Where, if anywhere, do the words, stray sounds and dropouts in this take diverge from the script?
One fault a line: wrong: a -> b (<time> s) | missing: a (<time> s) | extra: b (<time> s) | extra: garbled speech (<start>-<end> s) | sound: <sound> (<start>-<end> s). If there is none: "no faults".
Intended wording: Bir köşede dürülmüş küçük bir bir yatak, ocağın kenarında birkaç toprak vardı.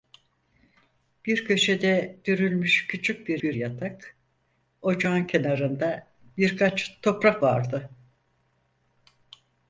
no faults